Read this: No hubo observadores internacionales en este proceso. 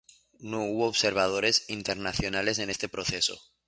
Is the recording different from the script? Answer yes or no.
no